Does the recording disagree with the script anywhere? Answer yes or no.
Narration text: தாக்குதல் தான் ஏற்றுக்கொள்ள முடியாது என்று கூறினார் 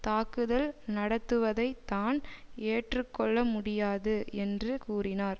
yes